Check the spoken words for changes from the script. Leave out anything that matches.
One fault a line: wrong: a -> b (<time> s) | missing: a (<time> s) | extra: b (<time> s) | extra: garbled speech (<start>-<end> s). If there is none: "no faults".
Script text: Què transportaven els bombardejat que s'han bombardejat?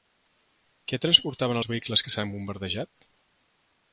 wrong: bombardejat -> vehicles (1.7 s)